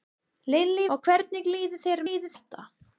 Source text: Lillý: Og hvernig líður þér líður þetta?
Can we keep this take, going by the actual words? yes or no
yes